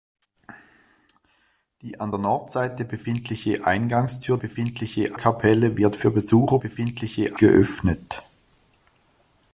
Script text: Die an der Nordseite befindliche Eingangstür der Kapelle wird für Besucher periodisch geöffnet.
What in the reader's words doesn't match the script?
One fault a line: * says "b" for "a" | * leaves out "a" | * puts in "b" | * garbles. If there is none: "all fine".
* says "befindliche" for "der"
* says "befindliche" for "periodisch"